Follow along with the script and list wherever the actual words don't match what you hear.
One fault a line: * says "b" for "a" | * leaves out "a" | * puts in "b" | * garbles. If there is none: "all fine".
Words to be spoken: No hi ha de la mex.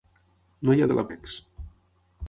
all fine